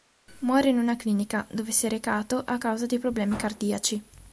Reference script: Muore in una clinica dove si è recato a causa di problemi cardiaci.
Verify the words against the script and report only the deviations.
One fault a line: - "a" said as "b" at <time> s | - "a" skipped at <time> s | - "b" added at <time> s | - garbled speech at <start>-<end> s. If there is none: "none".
none